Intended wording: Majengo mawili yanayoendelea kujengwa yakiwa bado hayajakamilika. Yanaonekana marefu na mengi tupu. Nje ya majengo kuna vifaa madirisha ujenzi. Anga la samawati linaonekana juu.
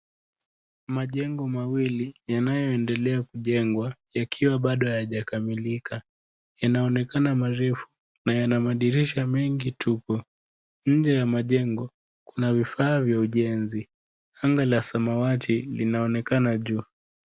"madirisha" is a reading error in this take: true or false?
true